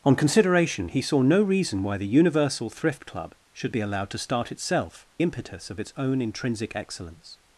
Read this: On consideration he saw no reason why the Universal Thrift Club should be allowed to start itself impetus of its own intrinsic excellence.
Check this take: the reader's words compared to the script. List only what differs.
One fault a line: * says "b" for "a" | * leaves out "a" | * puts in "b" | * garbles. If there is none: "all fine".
all fine